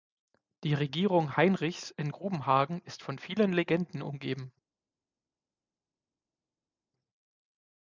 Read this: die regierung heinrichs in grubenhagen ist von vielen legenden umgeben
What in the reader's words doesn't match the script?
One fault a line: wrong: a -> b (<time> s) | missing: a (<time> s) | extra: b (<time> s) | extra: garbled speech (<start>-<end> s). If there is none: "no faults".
no faults